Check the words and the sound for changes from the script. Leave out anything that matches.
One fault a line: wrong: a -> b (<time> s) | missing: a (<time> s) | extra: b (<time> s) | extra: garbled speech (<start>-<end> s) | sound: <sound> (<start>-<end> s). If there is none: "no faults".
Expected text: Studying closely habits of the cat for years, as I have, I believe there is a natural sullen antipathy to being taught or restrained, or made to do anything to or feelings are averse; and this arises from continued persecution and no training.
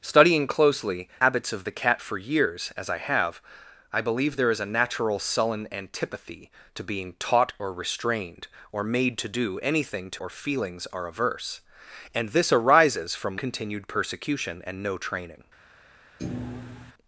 sound: thud (16.2-16.9 s)